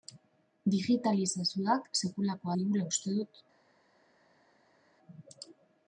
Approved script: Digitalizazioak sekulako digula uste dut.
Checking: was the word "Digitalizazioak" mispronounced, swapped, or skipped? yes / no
no